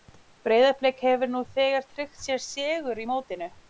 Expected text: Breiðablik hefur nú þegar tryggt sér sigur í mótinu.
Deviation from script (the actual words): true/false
false